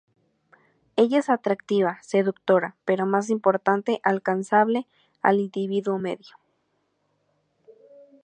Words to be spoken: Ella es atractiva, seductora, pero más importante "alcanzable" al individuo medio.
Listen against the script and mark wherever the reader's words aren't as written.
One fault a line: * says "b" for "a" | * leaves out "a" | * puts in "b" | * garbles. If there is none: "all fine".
all fine